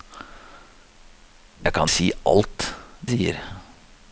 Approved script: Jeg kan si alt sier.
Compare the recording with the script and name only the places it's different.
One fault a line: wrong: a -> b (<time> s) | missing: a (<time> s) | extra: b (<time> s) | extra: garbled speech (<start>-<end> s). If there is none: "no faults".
no faults